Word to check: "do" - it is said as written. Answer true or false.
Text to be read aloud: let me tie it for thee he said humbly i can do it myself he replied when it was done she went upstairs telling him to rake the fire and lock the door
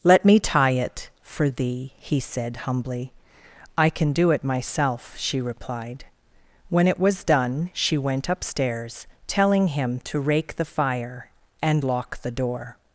true